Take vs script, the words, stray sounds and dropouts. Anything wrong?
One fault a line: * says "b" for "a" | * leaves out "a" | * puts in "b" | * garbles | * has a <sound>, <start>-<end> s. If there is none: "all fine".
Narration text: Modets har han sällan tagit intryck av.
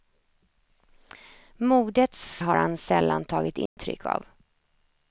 * has a dropout, 3.7-3.8 s